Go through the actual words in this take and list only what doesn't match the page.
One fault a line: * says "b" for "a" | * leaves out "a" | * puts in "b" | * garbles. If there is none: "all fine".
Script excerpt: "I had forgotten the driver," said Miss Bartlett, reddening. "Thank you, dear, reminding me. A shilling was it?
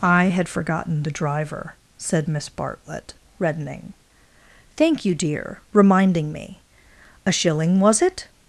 all fine